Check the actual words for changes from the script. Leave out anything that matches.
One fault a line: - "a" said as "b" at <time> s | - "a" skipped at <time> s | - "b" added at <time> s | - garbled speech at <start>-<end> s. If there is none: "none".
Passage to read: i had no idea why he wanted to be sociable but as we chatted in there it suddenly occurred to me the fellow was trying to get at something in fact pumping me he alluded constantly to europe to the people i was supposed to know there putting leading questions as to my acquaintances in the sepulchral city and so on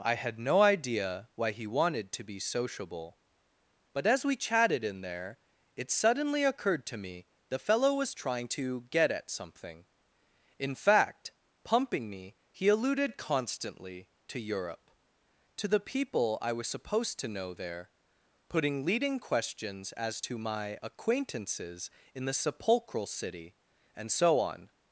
none